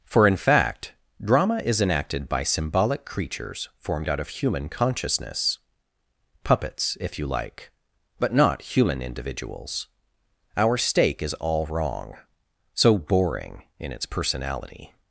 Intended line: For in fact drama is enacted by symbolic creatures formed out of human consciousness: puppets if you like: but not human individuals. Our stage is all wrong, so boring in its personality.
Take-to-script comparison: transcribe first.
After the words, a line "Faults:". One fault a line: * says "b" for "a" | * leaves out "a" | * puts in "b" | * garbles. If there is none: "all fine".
For in fact drama is enacted by symbolic creatures formed out of human consciousness: puppets if you like: but not human individuals. Our stake is all wrong, so boring in its personality.
Faults:
* says "stake" for "stage"